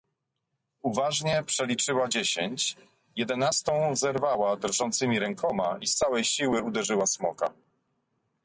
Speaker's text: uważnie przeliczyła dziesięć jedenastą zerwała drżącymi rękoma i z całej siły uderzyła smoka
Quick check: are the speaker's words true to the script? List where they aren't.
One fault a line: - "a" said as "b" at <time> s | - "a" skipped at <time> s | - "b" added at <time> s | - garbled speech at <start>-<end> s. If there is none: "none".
none